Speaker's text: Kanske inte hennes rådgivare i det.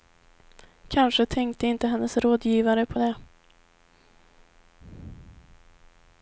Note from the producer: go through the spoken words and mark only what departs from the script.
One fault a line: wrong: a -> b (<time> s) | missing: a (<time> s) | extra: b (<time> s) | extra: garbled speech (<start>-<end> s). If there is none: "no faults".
extra: tänkte (1.2 s)
wrong: i -> på (2.9 s)